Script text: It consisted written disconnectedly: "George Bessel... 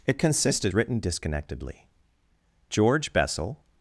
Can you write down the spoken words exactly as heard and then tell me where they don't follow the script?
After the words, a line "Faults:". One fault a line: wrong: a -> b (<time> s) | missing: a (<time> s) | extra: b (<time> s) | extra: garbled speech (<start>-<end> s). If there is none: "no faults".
It consisted written disconnectedly: "George Bessel...
Faults:
no faults